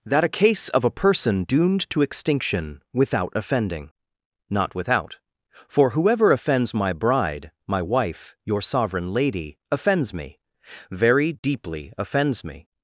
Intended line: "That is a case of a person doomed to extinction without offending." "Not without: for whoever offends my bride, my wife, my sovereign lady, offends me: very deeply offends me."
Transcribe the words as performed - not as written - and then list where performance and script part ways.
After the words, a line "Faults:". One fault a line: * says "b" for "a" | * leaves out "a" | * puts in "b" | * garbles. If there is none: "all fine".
"That a case of a person doomed to extinction without offending." "Not without: for whoever offends my bride, my wife, your sovereign lady, offends me: very deeply offends me."
Faults:
* leaves out "is"
* says "your" for "my"